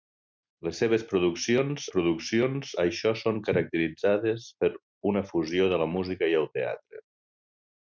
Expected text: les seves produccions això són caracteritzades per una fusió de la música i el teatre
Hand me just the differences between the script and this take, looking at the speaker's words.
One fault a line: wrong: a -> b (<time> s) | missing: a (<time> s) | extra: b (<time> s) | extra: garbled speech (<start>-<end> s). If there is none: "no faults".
extra: produccions (1.9 s)